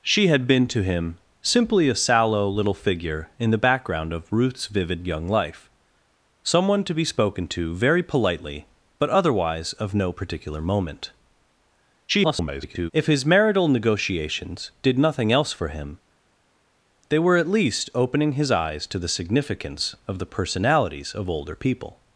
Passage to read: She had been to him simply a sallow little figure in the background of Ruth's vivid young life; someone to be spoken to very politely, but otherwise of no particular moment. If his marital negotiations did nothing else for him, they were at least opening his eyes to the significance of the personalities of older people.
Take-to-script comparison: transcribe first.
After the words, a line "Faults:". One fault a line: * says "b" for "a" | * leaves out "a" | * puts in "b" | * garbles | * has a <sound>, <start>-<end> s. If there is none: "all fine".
She had been to him simply a sallow little figure in the background of Ruth's vivid young life; someone to be spoken to very politely, but otherwise of no particular moment. [garbled] If his marital negotiations did nothing else for him, they were at least opening his eyes to the significance of the personalities of older people.
Faults:
* garbles